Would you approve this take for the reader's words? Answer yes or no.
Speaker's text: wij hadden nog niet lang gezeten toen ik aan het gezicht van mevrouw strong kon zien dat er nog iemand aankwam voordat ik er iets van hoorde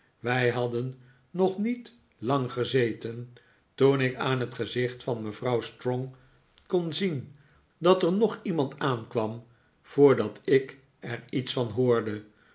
yes